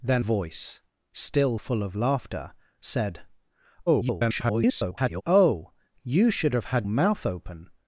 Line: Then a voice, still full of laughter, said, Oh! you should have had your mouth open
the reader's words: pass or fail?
fail